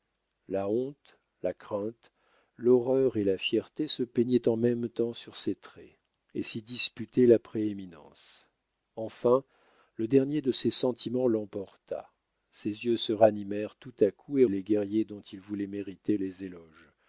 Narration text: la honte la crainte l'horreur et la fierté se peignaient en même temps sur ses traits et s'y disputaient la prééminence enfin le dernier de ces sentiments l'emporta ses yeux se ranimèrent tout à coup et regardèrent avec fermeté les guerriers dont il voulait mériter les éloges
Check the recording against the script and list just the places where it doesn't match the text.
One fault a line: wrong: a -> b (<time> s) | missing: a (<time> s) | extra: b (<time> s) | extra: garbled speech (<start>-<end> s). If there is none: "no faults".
missing: regardèrent avec fermeté (14.5 s)